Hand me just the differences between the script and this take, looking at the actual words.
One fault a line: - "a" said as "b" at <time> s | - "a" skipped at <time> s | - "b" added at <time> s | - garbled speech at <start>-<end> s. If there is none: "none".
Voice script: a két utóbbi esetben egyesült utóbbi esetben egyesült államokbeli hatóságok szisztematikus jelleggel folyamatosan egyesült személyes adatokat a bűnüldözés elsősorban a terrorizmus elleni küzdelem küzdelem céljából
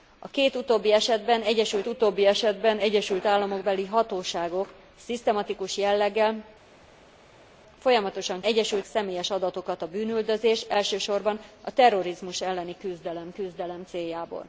none